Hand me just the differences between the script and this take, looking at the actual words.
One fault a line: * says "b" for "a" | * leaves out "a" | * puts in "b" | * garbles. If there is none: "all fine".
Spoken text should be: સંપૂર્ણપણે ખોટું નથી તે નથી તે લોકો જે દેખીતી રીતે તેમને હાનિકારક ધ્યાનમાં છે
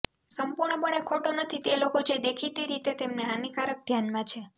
* leaves out "નથી તે"